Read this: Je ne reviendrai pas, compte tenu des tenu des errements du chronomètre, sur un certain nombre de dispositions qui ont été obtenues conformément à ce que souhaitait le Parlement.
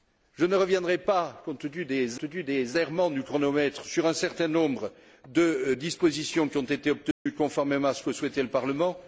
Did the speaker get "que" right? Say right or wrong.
right